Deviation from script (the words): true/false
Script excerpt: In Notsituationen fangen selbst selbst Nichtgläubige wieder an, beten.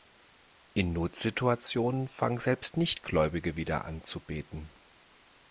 true